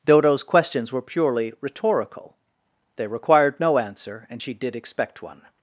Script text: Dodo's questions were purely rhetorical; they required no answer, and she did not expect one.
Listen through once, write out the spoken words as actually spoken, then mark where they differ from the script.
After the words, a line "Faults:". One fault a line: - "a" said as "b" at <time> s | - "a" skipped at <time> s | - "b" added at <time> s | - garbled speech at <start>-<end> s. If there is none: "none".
Dodo's questions were purely rhetorical; they required no answer, and she did expect one.
Faults:
- "not" skipped at 4.7 s